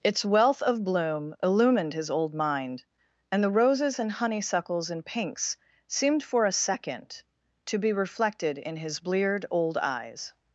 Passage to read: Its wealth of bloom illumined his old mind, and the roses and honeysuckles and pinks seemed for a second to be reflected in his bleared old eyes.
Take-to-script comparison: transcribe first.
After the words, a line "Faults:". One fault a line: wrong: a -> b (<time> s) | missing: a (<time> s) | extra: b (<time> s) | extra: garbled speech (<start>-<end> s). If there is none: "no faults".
Its wealth of bloom illumined his old mind, and the roses and honeysuckles and pinks seemed for a second to be reflected in his bleared old eyes.
Faults:
no faults